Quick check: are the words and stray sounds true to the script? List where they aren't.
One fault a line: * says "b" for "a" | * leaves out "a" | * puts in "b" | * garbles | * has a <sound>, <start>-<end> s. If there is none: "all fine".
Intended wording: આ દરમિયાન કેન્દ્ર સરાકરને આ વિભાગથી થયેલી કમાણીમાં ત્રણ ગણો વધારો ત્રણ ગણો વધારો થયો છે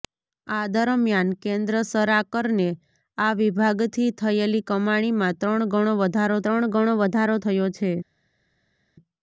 all fine